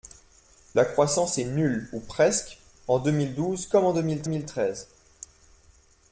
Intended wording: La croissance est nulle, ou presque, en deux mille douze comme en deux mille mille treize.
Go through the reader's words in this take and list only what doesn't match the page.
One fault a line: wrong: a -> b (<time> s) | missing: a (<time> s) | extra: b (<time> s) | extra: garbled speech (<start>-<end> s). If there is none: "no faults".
no faults